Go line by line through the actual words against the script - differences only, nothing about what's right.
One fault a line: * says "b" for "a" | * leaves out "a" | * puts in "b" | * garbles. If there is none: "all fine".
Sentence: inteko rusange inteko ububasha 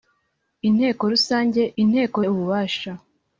all fine